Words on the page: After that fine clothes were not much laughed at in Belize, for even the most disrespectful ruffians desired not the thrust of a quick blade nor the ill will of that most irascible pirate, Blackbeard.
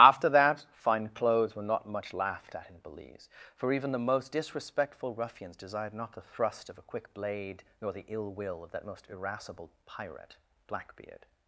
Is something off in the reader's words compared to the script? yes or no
no